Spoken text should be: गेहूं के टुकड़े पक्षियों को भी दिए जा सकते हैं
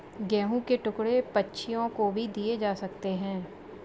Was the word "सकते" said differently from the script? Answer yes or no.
no